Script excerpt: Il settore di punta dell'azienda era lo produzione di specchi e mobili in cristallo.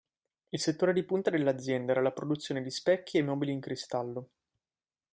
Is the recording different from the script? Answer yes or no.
yes